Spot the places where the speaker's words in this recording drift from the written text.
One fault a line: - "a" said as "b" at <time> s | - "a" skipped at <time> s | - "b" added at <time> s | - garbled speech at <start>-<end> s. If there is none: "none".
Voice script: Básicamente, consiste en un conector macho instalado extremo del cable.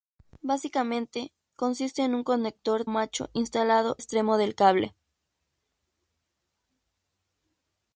none